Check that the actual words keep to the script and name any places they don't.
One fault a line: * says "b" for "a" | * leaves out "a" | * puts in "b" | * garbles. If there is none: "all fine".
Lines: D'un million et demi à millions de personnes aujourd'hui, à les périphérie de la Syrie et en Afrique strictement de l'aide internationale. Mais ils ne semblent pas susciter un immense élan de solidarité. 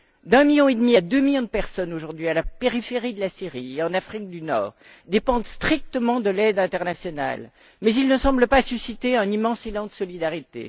* puts in "deux"
* says "la" for "les"
* puts in "du Nord dépendent"